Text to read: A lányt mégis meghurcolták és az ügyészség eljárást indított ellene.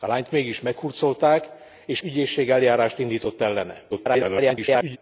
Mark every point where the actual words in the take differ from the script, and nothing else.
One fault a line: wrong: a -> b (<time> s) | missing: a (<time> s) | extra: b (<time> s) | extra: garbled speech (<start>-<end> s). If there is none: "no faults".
missing: az (2.0 s)
extra: garbled speech (3.9-5.0 s)